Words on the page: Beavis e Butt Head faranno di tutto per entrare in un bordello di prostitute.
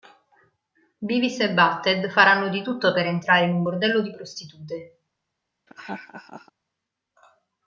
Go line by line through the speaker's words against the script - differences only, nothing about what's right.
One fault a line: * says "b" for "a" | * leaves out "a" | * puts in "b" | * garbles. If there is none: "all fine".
all fine